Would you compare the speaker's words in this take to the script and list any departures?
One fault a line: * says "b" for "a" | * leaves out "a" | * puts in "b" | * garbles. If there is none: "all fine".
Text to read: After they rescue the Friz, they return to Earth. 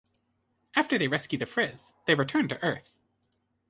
all fine